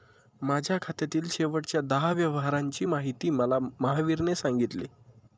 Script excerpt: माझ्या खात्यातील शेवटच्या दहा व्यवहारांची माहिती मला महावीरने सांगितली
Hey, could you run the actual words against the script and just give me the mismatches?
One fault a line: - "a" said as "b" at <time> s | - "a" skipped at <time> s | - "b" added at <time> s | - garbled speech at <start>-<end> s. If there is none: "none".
none